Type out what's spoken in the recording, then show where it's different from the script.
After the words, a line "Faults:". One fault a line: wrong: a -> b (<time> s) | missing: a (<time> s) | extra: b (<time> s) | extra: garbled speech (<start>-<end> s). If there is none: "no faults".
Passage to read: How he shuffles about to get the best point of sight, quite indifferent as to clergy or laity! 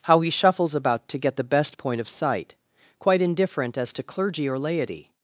How he shuffles about to get the best point of sight, quite indifferent as to clergy or laity!
Faults:
no faults